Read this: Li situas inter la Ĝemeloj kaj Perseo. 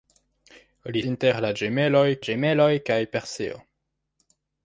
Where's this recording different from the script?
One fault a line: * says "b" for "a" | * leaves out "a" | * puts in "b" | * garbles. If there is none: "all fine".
* leaves out "situas"
* puts in "Ĝemeloj"